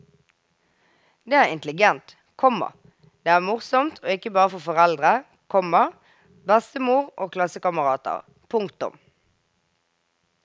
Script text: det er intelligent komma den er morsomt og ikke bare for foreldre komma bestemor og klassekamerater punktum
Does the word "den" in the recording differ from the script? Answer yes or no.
yes